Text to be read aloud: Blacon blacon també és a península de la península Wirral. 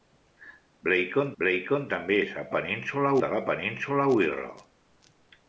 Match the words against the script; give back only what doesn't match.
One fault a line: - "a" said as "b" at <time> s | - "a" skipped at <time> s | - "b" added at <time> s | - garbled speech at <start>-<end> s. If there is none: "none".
none